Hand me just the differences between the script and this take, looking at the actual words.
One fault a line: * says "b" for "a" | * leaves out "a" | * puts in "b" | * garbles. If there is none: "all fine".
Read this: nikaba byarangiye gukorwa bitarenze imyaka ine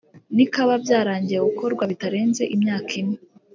all fine